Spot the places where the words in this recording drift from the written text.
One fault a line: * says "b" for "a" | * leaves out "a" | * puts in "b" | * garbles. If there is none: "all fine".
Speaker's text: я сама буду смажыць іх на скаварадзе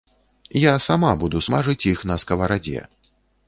all fine